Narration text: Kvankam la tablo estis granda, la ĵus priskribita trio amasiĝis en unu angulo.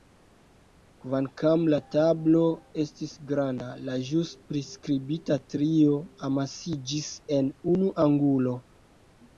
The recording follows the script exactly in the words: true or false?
true